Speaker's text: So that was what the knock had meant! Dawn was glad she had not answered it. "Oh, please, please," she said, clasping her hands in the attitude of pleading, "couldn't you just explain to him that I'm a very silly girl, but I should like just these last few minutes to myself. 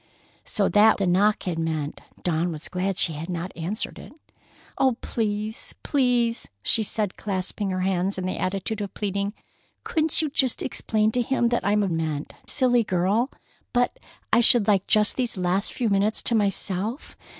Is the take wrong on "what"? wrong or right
wrong